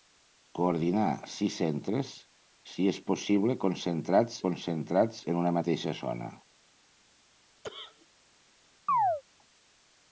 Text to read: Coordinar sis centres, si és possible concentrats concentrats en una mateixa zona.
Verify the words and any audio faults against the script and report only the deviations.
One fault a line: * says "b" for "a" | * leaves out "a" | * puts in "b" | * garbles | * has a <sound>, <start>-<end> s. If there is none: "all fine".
* has a cough, 7.6-8.1 s
* has a chirp, 8.9-9.2 s